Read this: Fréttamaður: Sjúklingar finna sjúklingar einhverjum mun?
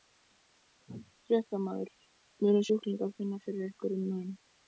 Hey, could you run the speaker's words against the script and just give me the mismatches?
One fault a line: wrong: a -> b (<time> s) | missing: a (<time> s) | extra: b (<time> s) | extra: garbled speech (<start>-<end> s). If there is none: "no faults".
extra: Munu (2.4 s)
wrong: sjúklingar -> fyrir (3.5 s)